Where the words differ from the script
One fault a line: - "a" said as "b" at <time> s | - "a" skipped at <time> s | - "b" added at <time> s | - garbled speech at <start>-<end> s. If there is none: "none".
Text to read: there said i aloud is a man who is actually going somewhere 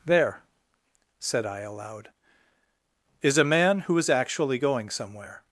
none